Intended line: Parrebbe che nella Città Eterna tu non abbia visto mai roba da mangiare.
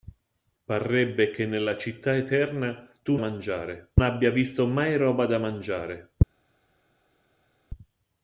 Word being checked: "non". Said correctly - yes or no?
no